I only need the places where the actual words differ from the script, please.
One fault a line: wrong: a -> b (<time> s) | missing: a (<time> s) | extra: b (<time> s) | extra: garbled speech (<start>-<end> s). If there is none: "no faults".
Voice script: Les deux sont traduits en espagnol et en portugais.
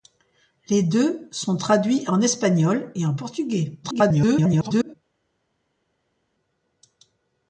extra: garbled speech (3.8-4.9 s)